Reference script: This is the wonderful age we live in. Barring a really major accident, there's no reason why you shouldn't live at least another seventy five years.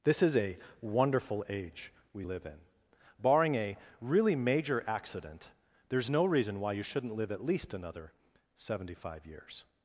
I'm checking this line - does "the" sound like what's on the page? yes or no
no